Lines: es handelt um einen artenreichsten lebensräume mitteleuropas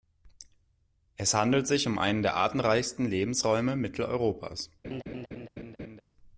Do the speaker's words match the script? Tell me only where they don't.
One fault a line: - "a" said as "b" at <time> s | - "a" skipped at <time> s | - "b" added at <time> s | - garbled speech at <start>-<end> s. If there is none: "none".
- "sich" added at 1.7 s
- "der" added at 2.2 s